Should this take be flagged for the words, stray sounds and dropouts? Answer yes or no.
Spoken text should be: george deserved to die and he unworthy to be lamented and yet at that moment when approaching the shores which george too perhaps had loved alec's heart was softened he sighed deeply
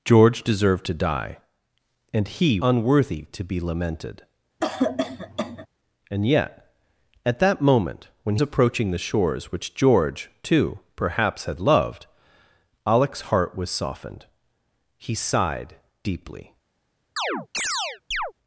yes